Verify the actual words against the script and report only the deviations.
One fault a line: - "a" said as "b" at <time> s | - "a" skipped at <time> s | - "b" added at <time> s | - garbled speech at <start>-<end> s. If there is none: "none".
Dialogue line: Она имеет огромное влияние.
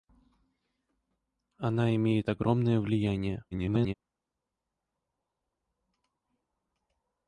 - garbled speech at 3.5-3.9 s